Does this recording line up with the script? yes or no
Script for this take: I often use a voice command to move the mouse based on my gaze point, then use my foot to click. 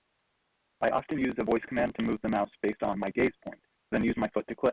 yes